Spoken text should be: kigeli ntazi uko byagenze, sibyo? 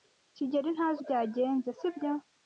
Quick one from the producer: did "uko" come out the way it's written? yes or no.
no